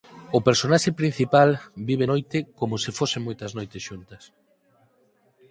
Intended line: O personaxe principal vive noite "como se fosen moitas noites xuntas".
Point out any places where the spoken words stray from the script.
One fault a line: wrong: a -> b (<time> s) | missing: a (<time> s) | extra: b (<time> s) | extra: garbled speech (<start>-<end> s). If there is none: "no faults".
no faults